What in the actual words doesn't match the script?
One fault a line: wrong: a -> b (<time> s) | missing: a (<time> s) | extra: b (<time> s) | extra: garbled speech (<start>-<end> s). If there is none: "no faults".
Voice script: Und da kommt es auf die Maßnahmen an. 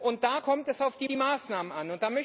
extra: die (1.0 s)